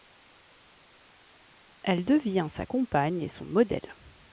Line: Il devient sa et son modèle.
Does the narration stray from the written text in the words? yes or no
yes